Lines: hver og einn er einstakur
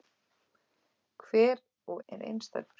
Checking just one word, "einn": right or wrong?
wrong